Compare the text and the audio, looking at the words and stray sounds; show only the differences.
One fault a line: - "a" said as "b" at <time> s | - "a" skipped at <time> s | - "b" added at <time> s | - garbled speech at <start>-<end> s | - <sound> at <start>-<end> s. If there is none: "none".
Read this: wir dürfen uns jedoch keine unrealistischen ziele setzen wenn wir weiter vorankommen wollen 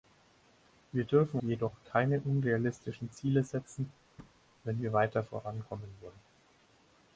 - "uns" skipped at 1.4 s
- thud at 4.2-4.4 s